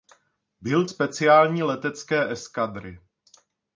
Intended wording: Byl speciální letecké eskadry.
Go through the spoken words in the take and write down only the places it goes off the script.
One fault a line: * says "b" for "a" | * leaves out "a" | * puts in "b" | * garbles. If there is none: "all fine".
all fine